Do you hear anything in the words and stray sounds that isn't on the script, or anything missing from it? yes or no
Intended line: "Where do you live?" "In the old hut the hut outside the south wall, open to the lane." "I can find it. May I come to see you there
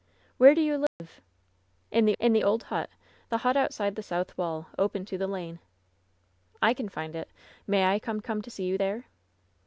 yes